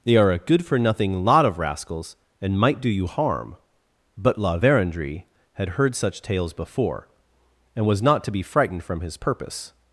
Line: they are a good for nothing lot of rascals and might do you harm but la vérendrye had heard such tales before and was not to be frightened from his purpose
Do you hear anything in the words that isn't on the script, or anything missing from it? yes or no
no